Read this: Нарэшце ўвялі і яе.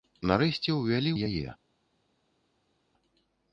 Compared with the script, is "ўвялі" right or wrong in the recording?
right